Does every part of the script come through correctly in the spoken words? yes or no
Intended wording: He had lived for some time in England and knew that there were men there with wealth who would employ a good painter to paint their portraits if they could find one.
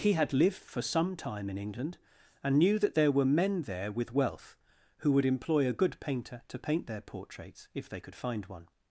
yes